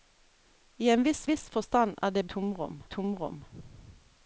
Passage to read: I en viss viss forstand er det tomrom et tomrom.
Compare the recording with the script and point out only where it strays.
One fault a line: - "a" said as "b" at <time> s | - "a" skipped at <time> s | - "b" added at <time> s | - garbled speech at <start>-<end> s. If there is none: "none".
none